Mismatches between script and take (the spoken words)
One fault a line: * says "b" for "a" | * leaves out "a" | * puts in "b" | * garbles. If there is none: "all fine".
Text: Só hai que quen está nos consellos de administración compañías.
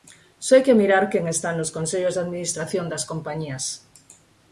* puts in "mirar"
* puts in "das"